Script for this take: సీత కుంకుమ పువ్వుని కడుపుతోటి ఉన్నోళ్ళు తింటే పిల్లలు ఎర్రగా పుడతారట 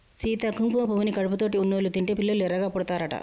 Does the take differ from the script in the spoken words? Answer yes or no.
no